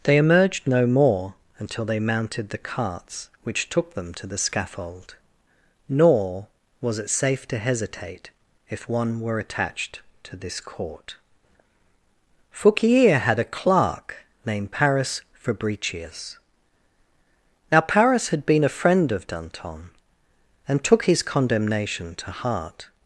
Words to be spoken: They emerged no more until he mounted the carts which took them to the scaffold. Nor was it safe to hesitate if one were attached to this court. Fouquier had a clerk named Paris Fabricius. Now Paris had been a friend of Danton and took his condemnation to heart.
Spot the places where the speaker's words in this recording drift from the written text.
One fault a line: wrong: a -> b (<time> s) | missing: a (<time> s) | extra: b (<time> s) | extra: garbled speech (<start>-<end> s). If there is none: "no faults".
wrong: he -> they (1.9 s)